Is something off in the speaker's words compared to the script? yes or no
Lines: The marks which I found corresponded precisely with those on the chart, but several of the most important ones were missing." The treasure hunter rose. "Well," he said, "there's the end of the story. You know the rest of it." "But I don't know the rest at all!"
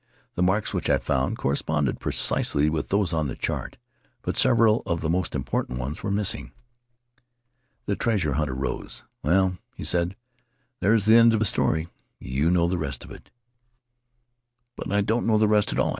no